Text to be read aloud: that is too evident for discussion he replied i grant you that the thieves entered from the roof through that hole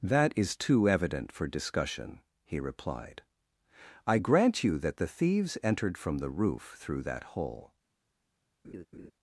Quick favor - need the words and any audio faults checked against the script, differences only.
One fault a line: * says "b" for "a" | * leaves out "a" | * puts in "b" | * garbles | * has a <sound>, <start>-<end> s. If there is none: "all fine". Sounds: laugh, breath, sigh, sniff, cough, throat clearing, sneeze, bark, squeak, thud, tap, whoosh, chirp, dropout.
* has a laugh, 8.6-9.1 s